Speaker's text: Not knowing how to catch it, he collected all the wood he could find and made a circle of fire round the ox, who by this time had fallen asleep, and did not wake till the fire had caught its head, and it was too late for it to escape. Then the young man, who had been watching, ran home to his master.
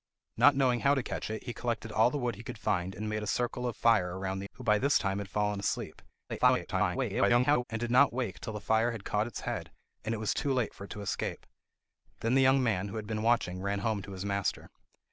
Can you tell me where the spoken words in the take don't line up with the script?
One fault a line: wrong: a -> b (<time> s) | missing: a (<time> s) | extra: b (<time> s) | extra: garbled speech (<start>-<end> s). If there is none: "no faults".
missing: ox (4.5 s)
extra: garbled speech (6.3-7.6 s)